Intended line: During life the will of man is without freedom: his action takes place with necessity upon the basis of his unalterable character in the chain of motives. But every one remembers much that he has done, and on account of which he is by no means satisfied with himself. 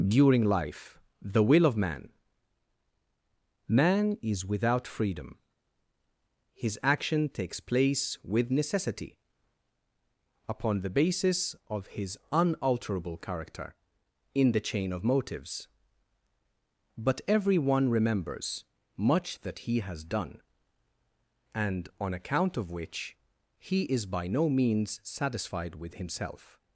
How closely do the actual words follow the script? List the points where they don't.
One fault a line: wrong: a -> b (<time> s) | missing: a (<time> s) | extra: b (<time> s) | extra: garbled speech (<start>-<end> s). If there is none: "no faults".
extra: man (3.7 s)